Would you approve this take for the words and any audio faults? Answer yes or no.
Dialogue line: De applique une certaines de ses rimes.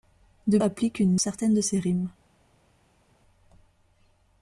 yes